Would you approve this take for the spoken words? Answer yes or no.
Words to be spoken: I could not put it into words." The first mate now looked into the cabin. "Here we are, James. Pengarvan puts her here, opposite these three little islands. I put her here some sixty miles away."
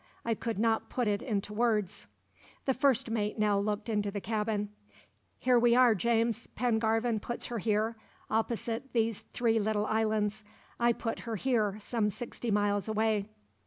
yes